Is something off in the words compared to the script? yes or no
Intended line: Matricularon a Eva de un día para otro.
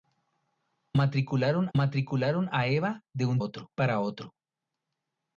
yes